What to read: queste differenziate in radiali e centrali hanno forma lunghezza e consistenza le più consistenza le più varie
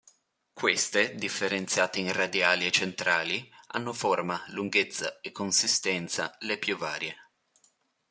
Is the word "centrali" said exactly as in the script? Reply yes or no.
yes